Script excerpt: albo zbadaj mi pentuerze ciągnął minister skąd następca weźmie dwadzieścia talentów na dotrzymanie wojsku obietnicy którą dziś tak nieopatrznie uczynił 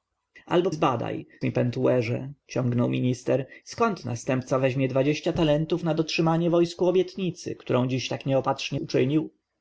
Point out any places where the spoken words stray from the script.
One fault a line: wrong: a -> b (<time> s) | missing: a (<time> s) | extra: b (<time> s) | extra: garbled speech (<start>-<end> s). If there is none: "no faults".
no faults